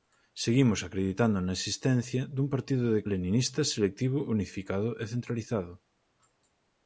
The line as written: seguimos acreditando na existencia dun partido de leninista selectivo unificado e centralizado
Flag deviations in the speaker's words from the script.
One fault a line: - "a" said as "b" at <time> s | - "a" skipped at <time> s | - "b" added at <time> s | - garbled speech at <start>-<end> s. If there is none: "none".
none